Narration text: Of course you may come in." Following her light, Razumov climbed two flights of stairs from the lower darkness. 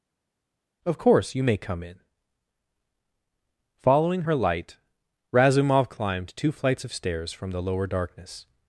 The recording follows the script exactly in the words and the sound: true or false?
true